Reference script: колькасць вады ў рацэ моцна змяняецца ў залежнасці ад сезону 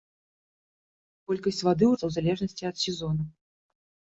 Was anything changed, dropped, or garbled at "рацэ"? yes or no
yes